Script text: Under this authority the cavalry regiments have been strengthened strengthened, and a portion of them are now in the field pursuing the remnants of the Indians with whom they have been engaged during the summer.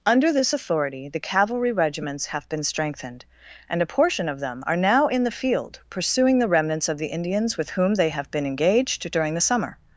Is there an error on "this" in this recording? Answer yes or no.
no